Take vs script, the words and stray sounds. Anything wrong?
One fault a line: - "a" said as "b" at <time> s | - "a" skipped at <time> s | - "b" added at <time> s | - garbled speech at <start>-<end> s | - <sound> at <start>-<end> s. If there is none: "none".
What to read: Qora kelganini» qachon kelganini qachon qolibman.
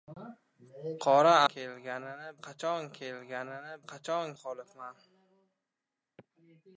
none